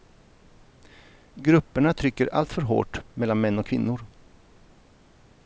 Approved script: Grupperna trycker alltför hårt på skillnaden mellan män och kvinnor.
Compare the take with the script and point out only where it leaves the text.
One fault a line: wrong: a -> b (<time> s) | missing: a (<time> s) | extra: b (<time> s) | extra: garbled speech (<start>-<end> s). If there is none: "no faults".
missing: på skillnaden (3.1 s)